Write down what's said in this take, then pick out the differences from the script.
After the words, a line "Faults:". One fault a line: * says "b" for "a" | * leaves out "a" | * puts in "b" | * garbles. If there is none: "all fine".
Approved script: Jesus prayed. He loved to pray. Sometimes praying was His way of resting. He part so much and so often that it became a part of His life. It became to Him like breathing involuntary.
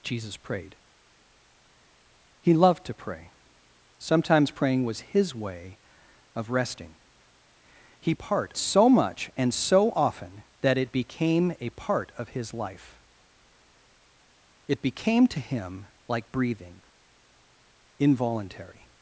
Jesus prayed. He loved to pray. Sometimes praying was His way of resting. He part so much and so often that it became a part of His life. It became to Him like breathing involuntary.
Faults:
all fine